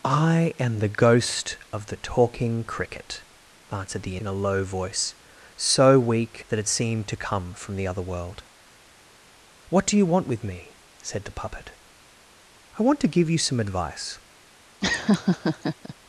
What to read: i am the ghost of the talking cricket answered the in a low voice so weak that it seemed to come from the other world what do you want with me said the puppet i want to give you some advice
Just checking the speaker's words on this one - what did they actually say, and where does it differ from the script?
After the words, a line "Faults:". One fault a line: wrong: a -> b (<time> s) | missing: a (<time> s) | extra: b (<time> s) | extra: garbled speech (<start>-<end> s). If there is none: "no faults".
i am the ghost of the talking cricket answered the in a low voice so weak that it seemed to come from the other world what do you want with me said the puppet i want to give you some advice
Faults:
no faults